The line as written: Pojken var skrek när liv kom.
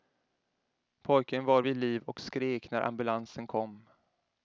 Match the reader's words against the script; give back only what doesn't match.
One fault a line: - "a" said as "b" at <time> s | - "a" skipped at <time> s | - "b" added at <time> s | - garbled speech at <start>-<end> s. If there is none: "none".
- "vid liv och" added at 1.6 s
- "liv" said as "ambulansen" at 2.8 s